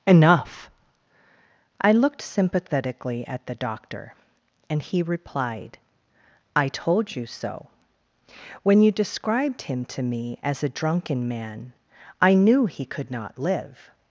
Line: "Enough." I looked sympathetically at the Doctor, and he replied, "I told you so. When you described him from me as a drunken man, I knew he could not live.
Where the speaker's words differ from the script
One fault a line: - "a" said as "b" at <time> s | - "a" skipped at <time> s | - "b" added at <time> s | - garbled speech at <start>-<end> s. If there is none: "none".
- "from" said as "to" at 9.8 s